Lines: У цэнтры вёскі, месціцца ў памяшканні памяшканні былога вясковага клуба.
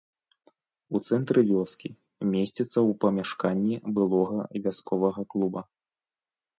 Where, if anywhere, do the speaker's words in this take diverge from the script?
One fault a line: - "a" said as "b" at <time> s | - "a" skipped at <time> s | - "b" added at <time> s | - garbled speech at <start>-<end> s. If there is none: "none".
- "памяшканні" skipped at 3.8 s